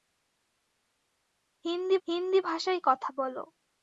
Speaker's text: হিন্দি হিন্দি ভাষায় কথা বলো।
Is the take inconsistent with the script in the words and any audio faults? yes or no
no